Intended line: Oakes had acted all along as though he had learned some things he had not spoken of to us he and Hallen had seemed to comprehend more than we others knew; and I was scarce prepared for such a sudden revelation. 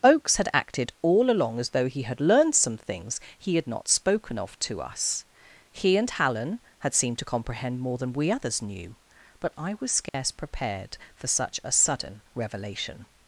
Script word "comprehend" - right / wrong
right